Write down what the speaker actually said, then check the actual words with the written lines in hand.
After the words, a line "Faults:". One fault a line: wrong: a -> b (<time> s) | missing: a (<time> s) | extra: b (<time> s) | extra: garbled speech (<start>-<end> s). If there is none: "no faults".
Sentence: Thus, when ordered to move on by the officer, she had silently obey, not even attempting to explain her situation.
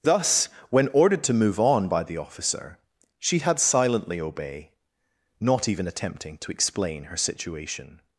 Thus, when ordered to move on by the officer, she had silently obey, not even attempting to explain her situation.
Faults:
no faults